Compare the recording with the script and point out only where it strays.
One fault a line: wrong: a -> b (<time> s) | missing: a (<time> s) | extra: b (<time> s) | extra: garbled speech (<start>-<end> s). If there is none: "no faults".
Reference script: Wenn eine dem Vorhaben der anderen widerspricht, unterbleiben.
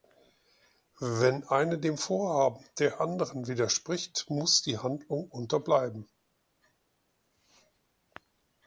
extra: muss die Handlung (4.3 s)